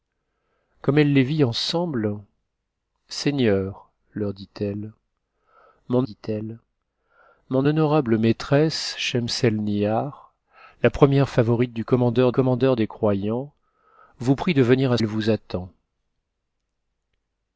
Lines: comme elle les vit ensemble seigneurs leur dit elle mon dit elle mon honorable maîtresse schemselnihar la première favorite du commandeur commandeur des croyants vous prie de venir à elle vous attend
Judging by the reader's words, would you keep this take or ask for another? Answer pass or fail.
pass